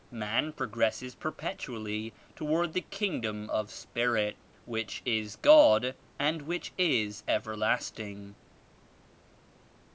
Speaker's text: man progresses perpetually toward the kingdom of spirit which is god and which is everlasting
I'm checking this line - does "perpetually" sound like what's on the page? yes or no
yes